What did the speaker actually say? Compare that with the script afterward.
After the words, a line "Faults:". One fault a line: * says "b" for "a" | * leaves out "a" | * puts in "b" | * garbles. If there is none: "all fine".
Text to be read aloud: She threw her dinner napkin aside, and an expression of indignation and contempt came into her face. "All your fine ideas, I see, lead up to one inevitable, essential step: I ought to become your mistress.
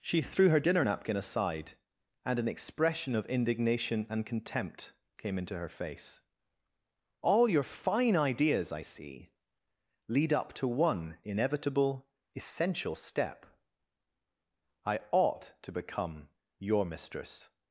She threw her dinner napkin aside, and an expression of indignation and contempt came into her face. "All your fine ideas, I see, lead up to one inevitable, essential step: I ought to become your mistress.
Faults:
all fine